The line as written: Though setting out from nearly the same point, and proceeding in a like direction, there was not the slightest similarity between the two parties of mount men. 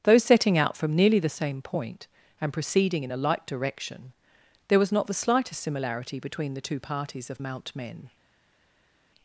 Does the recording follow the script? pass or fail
pass